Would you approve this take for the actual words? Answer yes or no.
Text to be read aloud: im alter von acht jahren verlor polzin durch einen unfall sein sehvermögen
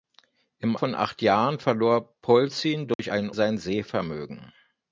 no